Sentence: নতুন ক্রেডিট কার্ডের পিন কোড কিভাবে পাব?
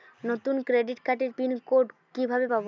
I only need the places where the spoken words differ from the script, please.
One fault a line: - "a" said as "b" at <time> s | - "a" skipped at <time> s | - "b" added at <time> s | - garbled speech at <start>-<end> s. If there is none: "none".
none